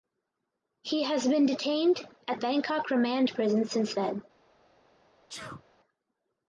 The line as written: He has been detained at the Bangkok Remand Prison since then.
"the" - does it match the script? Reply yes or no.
no